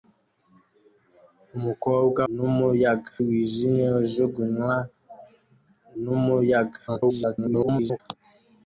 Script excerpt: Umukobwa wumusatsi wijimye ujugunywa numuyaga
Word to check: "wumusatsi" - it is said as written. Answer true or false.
false